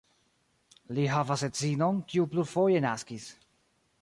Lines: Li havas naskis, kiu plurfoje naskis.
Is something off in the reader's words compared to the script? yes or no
yes